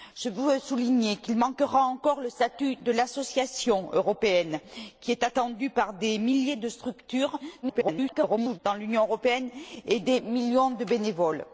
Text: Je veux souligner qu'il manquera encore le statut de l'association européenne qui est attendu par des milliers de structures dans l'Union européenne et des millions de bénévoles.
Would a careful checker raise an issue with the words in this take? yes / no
yes